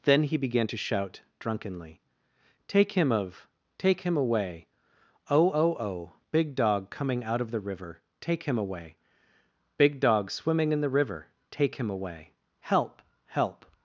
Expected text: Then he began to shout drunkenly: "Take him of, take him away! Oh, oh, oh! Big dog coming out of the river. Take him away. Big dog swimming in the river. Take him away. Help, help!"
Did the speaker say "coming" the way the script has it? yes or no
yes